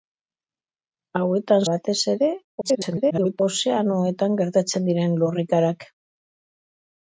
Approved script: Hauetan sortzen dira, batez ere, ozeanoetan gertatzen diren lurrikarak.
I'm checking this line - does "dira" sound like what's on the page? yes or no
no